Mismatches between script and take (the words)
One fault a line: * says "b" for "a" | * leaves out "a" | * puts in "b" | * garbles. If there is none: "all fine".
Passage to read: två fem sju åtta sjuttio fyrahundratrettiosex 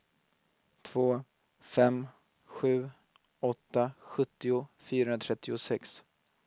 all fine